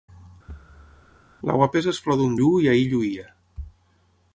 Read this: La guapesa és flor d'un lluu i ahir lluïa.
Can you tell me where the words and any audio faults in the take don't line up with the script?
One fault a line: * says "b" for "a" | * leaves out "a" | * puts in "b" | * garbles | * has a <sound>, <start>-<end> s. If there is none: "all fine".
* has a thud, 0.5-1.3 s